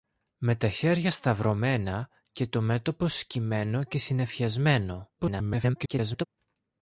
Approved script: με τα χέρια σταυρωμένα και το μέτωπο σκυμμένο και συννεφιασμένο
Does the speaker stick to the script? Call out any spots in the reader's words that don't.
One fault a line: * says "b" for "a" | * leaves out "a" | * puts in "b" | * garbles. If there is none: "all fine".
* garbles